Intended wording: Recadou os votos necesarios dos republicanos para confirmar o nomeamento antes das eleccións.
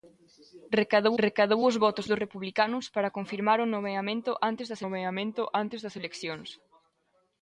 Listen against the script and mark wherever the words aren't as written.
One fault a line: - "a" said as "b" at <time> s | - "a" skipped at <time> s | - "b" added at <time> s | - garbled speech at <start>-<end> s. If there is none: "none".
- "recadou" added at 1.2 s
- "necesarios" skipped at 2.1 s
- "nomeamento antes das" added at 4.8 s